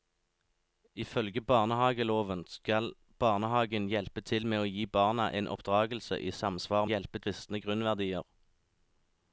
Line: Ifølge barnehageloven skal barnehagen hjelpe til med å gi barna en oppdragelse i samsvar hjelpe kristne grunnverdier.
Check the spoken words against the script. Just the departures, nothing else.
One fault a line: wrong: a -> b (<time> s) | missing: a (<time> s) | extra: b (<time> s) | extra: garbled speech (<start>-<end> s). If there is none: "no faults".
no faults